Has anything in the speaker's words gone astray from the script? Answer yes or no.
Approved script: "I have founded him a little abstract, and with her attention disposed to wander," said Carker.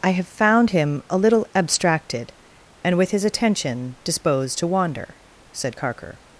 yes